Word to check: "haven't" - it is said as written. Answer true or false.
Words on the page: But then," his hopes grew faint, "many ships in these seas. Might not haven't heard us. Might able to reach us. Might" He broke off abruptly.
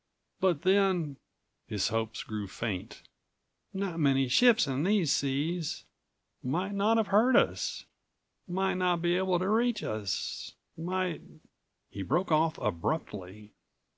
false